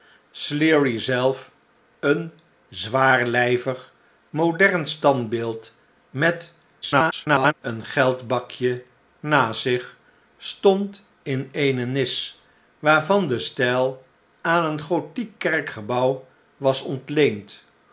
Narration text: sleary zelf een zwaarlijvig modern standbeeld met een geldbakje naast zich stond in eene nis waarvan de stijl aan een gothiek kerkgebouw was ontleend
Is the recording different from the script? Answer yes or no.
yes